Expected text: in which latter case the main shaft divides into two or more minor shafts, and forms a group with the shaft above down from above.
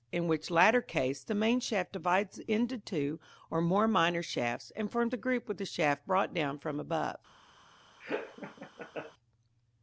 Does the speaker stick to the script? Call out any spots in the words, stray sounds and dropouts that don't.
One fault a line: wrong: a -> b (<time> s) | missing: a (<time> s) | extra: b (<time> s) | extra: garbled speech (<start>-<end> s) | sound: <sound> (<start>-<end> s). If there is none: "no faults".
wrong: above -> brought (6.1 s)
sound: laugh (8.0-9.1 s)